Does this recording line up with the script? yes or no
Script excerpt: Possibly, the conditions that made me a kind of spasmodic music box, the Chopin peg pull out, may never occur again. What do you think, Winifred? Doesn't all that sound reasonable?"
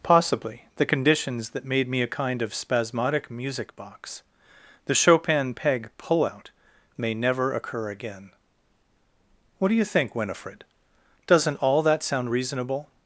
yes